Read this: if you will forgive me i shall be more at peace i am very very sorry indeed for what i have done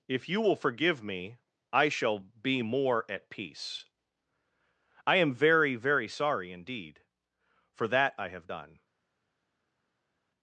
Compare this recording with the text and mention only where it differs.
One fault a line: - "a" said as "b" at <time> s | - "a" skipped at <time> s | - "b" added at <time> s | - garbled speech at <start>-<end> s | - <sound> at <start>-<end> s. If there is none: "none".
- "what" said as "that" at 7.9 s